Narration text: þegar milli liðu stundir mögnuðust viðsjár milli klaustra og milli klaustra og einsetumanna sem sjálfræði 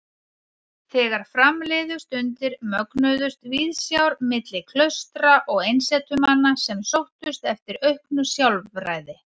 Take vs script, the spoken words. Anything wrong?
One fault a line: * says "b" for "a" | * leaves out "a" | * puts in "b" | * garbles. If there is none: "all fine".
* says "fram" for "milli"
* says "einsetumanna sem sóttust eftir auknu" for "milli klaustra og einsetumanna sem"